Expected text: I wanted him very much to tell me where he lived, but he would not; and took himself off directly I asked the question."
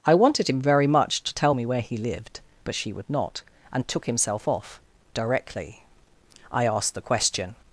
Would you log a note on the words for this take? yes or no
yes